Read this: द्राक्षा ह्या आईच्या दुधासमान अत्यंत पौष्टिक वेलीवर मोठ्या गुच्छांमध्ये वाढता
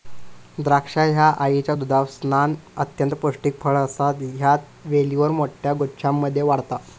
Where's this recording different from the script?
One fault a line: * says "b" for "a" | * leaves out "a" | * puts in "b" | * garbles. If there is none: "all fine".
* puts in "फळ असा ह्या"